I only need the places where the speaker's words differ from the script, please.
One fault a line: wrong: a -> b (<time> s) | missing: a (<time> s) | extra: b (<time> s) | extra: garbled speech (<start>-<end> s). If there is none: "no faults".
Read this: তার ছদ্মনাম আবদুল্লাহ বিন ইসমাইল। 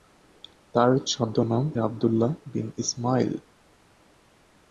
no faults